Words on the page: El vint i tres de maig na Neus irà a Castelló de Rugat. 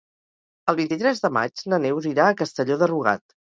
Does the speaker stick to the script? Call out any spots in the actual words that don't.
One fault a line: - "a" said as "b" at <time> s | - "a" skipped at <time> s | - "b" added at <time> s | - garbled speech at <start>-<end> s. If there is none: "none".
none